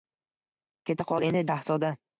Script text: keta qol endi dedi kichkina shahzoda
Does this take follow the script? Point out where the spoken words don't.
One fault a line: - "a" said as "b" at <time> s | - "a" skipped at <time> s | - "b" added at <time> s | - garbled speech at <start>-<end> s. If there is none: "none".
- "dedi kichkina" skipped at 1.4 s